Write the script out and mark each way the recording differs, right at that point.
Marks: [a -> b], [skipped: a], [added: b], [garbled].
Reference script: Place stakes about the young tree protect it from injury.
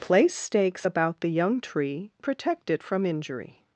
Place stakes about the young tree protect it from injury.